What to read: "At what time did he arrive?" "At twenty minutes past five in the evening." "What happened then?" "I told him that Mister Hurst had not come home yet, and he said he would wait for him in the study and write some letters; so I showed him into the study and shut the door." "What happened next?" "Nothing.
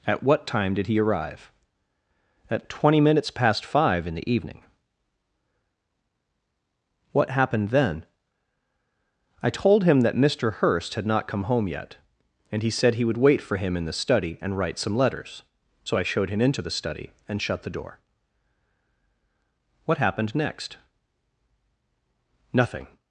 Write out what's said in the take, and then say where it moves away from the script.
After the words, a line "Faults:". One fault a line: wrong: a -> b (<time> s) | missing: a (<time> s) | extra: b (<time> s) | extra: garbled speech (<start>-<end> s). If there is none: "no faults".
"At what time did he arrive?" "At twenty minutes past five in the evening." "What happened then?" "I told him that Mister Hurst had not come home yet, and he said he would wait for him in the study and write some letters; so I showed him into the study and shut the door." "What happened next?" "Nothing.
Faults:
no faults